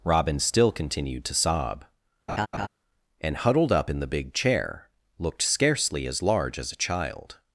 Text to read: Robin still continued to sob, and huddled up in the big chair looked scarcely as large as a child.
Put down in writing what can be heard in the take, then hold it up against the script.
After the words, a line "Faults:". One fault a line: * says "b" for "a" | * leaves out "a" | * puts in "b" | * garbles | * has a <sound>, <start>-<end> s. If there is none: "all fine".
Robin still continued to sob, and huddled up in the big chair looked scarcely as large as a child.
Faults:
* has a laugh, 2.3-2.7 s